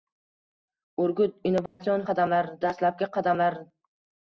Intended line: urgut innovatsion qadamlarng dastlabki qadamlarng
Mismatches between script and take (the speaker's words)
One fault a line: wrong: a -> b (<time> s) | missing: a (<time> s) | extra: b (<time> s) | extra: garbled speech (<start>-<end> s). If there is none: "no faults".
no faults